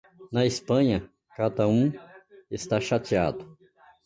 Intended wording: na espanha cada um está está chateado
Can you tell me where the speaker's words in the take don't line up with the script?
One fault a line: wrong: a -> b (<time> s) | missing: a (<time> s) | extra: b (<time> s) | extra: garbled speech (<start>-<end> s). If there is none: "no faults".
missing: está (2.8 s)